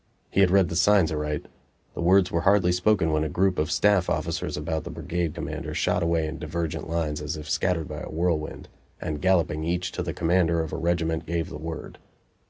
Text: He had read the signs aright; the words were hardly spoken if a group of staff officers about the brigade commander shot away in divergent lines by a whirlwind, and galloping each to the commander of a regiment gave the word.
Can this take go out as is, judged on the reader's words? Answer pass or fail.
fail